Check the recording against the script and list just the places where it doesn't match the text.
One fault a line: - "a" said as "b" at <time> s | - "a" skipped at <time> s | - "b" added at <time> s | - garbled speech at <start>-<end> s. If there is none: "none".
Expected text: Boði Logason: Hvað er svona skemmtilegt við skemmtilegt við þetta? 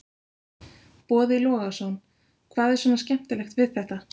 - "skemmtilegt við" skipped at 3.7 s